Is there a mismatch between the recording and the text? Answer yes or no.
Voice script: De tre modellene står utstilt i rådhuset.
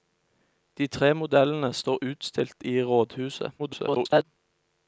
yes